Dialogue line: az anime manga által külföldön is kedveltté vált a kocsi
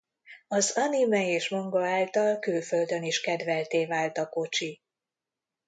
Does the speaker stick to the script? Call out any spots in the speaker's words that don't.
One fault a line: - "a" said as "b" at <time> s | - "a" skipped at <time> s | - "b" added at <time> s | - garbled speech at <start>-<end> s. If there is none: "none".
- "és" added at 1.3 s